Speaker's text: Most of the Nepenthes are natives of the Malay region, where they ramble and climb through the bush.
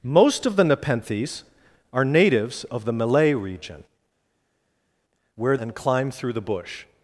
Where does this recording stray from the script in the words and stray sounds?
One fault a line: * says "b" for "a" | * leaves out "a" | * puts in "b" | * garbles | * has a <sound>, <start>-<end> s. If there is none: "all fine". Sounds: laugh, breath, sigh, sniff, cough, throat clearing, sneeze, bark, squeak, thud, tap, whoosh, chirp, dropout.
* leaves out "they ramble"